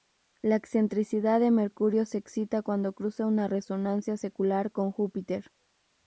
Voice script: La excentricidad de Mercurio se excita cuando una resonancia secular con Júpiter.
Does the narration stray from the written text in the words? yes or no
yes